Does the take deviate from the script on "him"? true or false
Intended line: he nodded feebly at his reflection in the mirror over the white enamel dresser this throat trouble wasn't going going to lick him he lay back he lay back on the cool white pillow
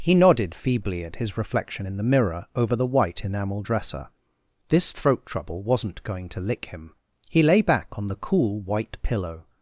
false